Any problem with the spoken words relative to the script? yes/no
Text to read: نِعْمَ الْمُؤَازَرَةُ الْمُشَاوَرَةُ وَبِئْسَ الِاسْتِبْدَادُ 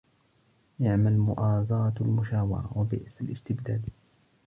no